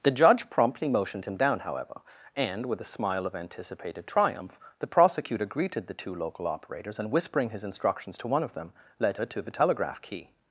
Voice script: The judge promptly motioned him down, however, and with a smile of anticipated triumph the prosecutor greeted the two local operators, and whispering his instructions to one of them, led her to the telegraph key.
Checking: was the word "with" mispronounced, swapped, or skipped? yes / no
no